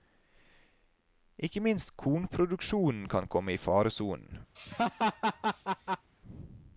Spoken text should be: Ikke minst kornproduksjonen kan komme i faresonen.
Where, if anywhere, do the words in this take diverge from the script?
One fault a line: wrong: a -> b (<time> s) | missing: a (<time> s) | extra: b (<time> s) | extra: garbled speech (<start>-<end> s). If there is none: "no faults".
no faults